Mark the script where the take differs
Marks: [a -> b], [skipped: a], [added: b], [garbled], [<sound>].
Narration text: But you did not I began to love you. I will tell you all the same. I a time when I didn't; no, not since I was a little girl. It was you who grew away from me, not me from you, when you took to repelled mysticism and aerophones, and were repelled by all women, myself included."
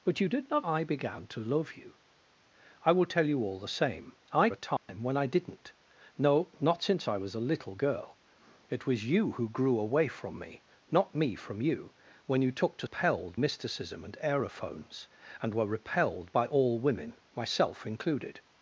But you did not I began to love you. I will tell you all the same. I a time [dropout] when I didn't; no, not since I was a little girl. It was you who grew away from me, not me from you, when you took to repelled mysticism and aerophones, and were repelled by all women, myself included."